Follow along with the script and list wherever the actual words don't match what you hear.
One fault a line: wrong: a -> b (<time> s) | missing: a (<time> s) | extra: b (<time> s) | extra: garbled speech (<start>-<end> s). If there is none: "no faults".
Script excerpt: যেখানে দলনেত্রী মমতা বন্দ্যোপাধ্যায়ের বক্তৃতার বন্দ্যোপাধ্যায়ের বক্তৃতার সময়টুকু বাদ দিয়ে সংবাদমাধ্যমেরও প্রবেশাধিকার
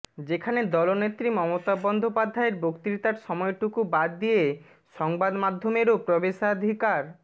missing: বন্দ্যোপাধ্যায়ের বক্তৃতার (3.1 s)